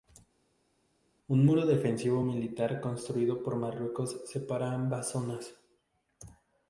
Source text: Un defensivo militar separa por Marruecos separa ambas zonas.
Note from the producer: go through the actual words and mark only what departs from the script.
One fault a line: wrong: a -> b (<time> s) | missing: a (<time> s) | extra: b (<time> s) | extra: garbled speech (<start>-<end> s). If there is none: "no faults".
extra: muro (1.4 s)
wrong: separa -> construido (2.8 s)